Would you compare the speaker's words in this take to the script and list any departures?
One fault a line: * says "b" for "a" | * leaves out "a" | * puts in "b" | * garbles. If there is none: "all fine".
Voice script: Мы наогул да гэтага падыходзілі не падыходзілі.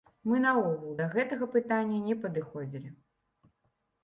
* says "пытання" for "падыходзілі"